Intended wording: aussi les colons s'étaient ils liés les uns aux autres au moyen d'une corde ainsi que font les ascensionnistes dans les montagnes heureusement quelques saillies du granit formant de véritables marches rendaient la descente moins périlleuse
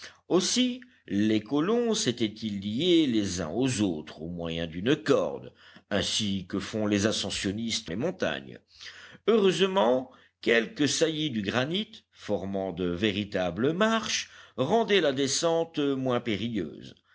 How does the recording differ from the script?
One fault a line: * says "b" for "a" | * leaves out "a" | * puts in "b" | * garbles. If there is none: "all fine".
* leaves out "dans"